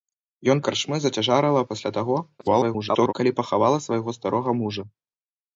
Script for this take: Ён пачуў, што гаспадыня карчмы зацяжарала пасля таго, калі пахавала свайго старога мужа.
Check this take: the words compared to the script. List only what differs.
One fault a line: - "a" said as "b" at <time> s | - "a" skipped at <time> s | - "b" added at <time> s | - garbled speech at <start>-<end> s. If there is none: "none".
- "пачуў што гаспадыня" skipped at 0.6 s
- garbled speech at 2.4-3.1 s